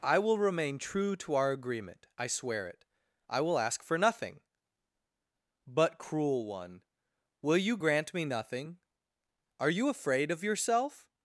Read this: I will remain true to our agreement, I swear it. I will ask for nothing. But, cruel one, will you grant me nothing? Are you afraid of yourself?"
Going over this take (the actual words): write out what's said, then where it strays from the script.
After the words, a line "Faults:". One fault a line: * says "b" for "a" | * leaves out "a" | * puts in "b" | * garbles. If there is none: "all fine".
I will remain true to our agreement, I swear it. I will ask for nothing. But, cruel one, will you grant me nothing? Are you afraid of yourself?"
Faults:
all fine